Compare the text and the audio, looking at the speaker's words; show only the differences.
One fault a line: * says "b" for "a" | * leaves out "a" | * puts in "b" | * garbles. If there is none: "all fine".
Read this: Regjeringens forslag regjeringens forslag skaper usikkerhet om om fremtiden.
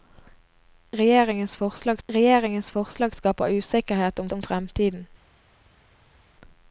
all fine